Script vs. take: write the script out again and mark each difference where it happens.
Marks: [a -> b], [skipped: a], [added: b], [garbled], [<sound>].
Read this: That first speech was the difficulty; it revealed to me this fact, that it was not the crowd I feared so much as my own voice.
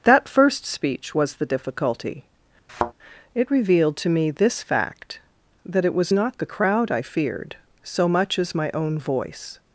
That first speech was the difficulty; [thud] it revealed to me this fact, that it was not the crowd I feared so much as my own voice.